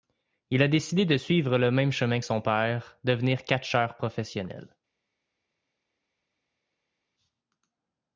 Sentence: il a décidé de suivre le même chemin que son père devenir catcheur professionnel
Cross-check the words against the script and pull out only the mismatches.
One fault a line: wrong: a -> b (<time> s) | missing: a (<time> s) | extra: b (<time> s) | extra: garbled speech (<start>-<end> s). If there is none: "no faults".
no faults